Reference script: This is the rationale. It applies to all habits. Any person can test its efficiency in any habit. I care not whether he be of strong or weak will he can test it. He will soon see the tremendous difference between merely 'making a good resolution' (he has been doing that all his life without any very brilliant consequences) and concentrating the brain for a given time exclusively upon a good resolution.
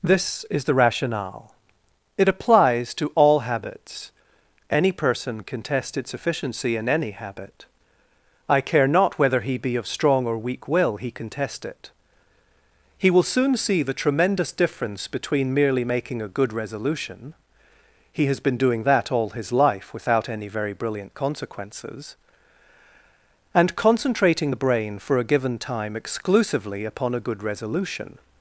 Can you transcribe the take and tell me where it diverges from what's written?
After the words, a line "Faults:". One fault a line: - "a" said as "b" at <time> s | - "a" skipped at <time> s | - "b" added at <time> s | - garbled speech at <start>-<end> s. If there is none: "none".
This is the rationale. It applies to all habits. Any person can test its efficiency in any habit. I care not whether he be of strong or weak will he can test it. He will soon see the tremendous difference between merely 'making a good resolution' (he has been doing that all his life without any very brilliant consequences) and concentrating the brain for a given time exclusively upon a good resolution.
Faults:
none